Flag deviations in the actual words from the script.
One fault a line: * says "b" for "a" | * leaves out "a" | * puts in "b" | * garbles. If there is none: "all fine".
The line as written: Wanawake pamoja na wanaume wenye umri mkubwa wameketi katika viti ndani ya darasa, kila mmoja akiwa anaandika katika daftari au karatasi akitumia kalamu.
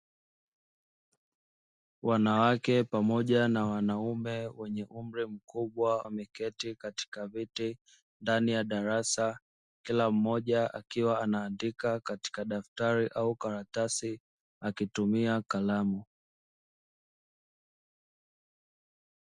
all fine